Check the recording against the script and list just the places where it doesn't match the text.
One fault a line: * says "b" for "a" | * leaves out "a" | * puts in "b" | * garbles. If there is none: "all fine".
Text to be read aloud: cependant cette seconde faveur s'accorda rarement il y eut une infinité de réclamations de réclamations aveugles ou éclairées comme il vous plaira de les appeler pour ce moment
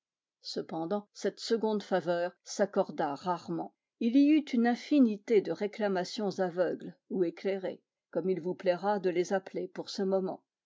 * leaves out "de réclamations"